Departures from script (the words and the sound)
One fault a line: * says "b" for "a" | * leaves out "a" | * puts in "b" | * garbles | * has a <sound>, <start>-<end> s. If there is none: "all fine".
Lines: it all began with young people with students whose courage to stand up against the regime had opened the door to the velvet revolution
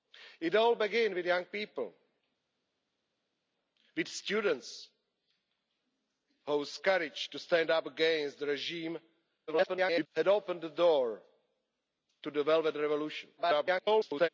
* garbles
* garbles